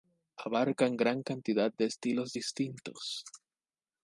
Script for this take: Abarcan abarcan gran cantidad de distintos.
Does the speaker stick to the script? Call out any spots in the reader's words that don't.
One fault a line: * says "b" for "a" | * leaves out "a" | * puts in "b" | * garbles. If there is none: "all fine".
* leaves out "abarcan"
* puts in "estilos"